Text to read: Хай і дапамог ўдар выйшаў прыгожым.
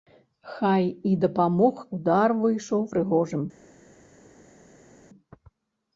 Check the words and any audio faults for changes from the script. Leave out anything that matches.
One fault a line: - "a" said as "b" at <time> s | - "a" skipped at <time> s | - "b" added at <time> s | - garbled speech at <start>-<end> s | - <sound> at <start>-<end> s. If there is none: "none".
none